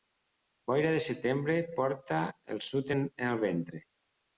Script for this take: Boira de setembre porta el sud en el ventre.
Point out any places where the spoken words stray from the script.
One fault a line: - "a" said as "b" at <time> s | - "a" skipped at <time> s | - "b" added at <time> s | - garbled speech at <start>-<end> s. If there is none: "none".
none